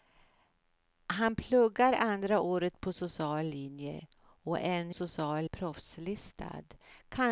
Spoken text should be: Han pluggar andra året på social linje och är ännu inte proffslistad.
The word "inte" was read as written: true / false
false